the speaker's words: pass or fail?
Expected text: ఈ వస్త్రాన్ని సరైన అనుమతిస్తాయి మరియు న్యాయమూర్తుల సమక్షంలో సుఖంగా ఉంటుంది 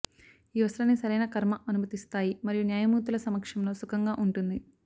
fail